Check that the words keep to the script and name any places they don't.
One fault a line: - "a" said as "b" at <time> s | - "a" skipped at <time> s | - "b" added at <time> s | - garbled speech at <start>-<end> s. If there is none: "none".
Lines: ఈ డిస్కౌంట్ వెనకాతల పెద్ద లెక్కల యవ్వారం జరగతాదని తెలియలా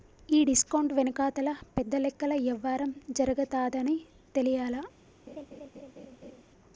none